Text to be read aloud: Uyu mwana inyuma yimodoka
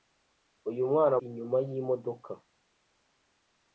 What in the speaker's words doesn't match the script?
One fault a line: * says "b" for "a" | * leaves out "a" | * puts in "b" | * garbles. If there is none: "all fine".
all fine